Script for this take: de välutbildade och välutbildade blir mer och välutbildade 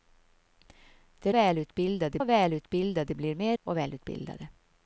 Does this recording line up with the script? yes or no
yes